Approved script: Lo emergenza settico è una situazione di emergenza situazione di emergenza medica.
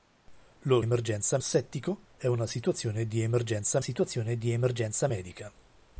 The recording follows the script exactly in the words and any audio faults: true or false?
true